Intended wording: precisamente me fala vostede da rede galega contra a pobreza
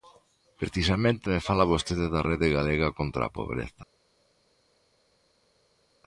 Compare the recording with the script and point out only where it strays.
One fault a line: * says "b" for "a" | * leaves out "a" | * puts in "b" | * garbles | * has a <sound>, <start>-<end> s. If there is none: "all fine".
all fine